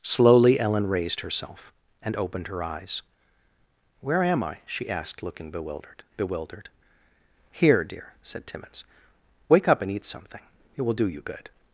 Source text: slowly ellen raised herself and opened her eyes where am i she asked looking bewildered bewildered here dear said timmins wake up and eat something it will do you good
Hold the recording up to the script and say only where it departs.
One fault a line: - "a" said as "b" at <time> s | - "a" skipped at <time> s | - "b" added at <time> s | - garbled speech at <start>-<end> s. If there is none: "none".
none